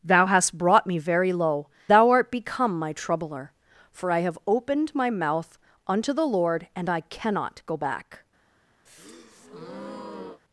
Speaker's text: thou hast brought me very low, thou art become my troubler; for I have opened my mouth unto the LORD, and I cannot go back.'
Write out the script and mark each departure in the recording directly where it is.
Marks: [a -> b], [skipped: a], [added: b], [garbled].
thou hast brought me very low, thou art become my troubler; for I have opened my mouth unto the LORD, and I cannot go back.'